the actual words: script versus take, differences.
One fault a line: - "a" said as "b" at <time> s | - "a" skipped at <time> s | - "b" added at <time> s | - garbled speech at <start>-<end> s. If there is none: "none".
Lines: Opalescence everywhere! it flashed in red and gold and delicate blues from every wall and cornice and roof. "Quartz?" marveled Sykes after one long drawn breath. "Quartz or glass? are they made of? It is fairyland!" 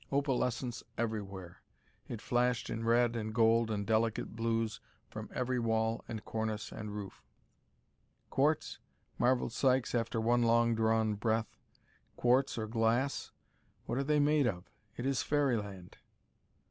- "what" added at 13.8 s